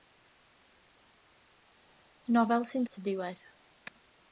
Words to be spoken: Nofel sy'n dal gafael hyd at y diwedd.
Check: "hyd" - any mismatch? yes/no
yes